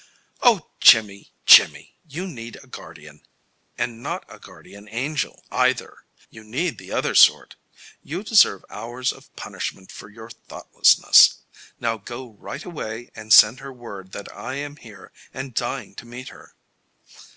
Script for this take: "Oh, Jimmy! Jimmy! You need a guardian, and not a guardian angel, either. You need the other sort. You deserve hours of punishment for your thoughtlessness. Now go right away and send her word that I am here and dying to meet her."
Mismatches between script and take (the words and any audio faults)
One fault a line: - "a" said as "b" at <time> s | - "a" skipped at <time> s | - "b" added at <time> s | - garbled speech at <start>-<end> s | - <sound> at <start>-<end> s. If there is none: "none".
none